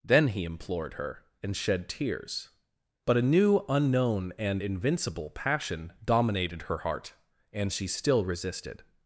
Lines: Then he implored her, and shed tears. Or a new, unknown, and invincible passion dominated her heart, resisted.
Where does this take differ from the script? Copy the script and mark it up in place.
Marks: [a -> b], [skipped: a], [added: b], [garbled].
Then he implored her, and shed tears. [Or -> But] a new, unknown, and invincible passion dominated her heart, [added: and she still] resisted.